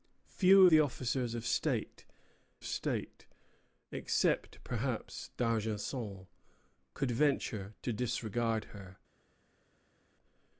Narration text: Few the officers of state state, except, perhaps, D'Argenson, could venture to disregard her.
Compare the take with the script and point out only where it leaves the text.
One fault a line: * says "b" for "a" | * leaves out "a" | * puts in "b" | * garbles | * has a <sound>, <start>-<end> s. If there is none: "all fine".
all fine